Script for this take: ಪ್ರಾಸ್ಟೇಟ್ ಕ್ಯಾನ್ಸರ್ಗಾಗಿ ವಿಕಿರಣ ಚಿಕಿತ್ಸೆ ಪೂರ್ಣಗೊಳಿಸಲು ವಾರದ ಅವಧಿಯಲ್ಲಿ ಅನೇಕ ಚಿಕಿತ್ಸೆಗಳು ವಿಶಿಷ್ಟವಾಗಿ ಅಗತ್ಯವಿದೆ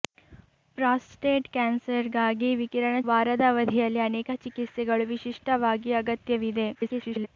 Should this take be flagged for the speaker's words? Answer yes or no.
yes